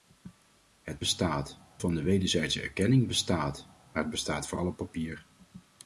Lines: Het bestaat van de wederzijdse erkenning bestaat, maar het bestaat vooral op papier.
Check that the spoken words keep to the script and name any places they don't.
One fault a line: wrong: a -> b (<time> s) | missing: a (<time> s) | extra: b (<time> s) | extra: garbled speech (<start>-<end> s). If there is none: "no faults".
no faults